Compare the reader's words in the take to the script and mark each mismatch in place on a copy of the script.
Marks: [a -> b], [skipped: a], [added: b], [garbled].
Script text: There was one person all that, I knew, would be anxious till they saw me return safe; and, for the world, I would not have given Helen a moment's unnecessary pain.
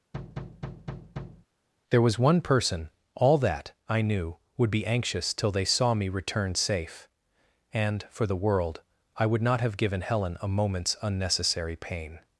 There was one person all that, I knew, would be anxious till they saw me return safe; and, for the world, I would not have given Helen a moment's unnecessary pain.